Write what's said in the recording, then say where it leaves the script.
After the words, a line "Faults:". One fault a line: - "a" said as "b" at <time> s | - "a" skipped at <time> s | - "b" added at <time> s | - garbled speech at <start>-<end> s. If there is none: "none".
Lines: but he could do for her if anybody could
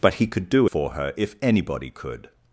but he could do for her if anybody could
Faults:
none